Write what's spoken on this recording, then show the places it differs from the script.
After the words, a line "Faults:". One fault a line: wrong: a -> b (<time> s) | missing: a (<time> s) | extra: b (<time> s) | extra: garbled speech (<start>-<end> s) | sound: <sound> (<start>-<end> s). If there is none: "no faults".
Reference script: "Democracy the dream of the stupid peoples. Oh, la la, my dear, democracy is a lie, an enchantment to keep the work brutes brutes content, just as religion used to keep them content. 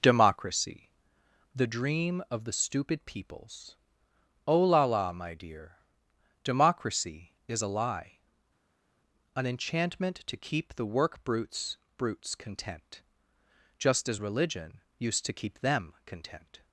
"Democracy the dream of the stupid peoples. Oh, la la, my dear, democracy is a lie, an enchantment to keep the work brutes brutes content, just as religion used to keep them content.
Faults:
no faults